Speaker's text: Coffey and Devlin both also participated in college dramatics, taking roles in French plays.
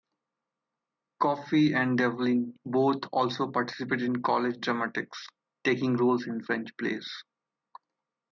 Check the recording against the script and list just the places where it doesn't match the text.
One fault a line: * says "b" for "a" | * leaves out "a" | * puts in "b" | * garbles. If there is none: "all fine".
all fine